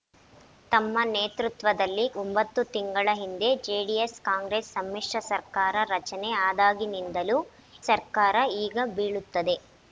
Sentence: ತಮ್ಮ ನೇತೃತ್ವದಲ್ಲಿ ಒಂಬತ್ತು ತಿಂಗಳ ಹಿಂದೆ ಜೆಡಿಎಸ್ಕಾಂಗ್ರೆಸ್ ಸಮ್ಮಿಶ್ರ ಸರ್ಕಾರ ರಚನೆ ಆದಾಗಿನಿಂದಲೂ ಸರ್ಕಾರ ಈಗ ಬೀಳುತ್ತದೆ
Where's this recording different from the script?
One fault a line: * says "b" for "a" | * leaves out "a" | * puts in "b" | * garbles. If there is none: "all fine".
all fine